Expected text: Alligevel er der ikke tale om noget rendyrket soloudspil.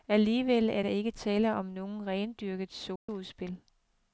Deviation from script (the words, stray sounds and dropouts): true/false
true